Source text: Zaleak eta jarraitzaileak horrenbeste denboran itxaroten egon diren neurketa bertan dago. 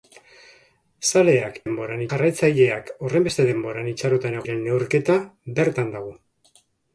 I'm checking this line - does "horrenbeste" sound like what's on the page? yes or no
yes